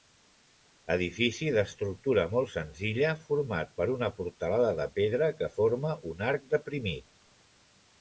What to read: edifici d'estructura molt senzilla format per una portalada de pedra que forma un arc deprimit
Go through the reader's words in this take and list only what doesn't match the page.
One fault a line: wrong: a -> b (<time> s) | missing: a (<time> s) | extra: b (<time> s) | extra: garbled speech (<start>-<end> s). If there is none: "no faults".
no faults